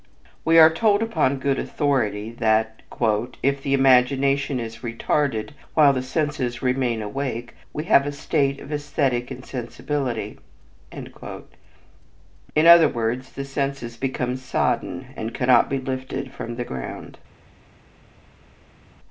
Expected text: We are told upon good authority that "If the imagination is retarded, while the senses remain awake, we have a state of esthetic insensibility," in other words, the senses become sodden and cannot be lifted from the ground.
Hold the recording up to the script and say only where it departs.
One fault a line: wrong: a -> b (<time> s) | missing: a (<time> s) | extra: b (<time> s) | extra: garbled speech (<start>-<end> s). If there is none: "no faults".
no faults